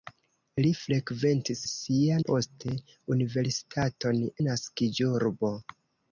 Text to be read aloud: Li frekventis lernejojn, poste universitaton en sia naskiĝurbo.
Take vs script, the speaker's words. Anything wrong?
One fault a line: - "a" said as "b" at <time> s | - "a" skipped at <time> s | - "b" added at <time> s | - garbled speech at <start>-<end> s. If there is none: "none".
- "lernejojn" said as "sia" at 1.7 s
- "en sia" skipped at 4.2 s